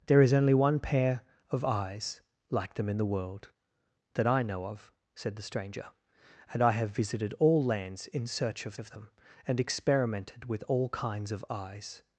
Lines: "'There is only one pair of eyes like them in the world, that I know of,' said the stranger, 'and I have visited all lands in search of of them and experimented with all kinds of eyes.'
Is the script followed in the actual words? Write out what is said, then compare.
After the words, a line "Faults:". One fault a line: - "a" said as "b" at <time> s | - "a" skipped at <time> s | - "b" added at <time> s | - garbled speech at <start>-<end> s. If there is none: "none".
"'There is only one pair of eyes like them in the world, that I know of,' said the stranger, 'and I have visited all lands in search of of them and experimented with all kinds of eyes.'
Faults:
none